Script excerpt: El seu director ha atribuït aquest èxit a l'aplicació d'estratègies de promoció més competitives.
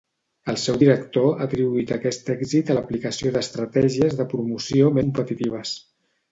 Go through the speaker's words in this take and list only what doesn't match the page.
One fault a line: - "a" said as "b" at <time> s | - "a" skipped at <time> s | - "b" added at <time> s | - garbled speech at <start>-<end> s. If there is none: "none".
- "més" skipped at 5.0 s